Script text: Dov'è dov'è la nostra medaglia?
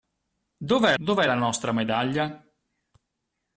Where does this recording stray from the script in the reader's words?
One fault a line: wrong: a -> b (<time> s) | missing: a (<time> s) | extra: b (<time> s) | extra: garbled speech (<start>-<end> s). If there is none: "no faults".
no faults